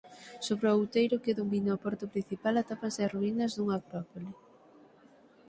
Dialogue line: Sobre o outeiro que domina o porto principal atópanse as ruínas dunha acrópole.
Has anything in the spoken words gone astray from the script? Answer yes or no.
no